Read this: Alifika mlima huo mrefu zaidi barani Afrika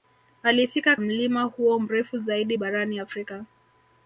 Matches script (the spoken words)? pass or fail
pass